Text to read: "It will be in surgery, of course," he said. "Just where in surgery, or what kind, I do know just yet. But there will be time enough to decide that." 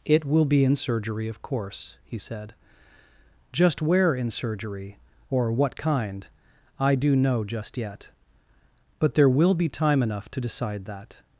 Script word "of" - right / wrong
right